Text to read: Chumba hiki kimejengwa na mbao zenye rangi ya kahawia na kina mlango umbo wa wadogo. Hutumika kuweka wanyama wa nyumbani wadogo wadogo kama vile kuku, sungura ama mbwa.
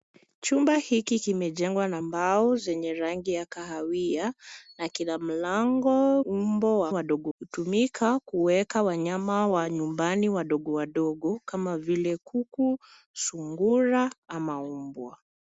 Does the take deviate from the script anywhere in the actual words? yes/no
no